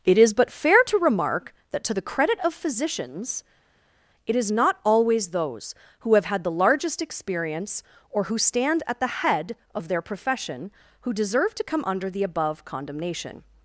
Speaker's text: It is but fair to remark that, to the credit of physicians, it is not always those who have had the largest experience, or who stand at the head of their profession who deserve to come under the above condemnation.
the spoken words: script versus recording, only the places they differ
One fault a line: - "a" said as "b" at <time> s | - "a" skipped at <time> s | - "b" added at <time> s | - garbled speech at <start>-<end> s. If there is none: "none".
none